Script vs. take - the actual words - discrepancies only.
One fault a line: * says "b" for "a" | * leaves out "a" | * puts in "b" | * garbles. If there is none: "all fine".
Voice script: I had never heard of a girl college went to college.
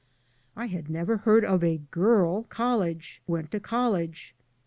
all fine